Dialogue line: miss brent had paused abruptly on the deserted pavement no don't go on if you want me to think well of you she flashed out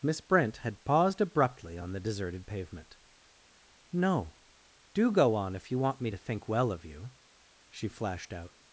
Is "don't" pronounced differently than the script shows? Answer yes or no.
yes